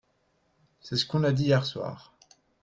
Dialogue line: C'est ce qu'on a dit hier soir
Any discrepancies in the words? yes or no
no